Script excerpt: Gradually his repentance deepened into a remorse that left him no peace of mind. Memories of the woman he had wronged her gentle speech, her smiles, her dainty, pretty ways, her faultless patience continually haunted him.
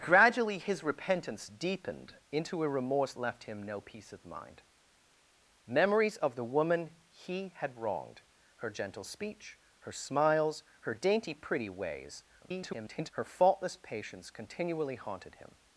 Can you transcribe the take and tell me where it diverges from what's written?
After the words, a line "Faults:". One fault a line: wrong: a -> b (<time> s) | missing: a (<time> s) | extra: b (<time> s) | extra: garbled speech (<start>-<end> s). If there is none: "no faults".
Gradually his repentance deepened into a remorse left him no peace of mind. Memories of the woman he had wronged her gentle speech, her smiles, her dainty, pretty ways, [garbled] her faultless patience continually haunted him.
Faults:
missing: that (3.1 s)
extra: garbled speech (12.4-13.1 s)